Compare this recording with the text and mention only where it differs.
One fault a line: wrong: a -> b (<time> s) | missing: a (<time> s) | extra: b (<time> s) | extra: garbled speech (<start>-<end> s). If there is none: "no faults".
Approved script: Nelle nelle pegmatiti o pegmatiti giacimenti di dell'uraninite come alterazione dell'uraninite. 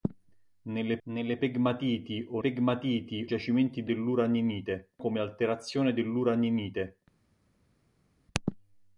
no faults